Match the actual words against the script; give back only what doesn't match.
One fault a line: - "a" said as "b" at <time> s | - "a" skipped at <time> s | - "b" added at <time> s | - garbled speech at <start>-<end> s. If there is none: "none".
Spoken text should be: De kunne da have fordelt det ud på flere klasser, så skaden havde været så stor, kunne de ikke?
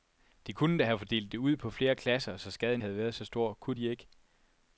none